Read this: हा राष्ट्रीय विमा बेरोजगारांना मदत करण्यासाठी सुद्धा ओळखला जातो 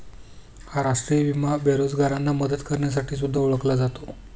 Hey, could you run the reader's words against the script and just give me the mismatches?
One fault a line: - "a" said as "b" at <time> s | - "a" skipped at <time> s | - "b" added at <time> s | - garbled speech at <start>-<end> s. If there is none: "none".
none